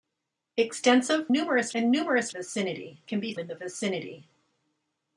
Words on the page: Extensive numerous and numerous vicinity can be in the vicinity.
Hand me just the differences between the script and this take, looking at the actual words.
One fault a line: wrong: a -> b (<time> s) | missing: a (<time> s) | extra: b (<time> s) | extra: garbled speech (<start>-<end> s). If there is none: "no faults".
no faults